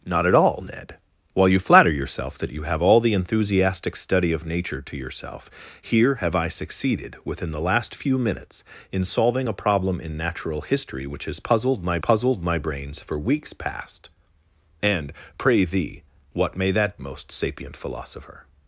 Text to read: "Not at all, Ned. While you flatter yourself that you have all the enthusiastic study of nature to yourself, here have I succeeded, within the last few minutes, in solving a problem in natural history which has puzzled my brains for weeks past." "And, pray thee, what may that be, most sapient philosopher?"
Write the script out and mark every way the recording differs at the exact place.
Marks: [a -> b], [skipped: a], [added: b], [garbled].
"Not at all, Ned. While you flatter yourself that you have all the enthusiastic study of nature to yourself, here have I succeeded, within the last few minutes, in solving a problem in natural history which has puzzled my [added: puzzled my] brains for weeks past." "And, pray thee, what may that [skipped: be,] most sapient philosopher?"